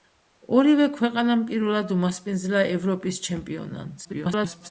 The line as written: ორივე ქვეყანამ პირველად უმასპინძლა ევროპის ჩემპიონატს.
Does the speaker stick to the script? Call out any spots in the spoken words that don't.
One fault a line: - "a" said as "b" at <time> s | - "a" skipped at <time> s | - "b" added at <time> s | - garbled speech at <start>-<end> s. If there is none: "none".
- garbled speech at 4.0-4.7 s